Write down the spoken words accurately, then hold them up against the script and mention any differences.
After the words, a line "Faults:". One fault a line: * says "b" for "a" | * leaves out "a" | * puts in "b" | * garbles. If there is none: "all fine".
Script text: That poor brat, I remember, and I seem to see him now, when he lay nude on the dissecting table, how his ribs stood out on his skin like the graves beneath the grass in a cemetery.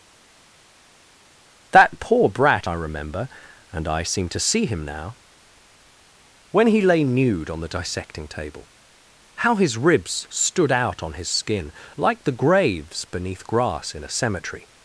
That poor brat, I remember, and I seem to see him now, when he lay nude on the dissecting table, how his ribs stood out on his skin like the graves beneath grass in a cemetery.
Faults:
* leaves out "the"